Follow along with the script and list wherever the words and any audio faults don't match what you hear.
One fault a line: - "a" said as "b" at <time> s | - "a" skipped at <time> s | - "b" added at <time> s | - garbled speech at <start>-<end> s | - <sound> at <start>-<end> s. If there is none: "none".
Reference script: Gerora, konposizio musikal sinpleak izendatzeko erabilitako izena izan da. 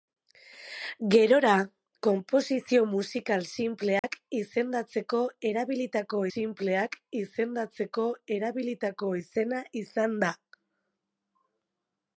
- dropout at 4.0-4.0 s
- "sinpleak izendatzeko erabilitako" added at 6.3 s